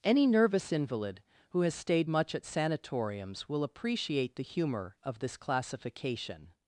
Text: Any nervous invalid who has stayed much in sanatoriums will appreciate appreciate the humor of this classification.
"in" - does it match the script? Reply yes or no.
no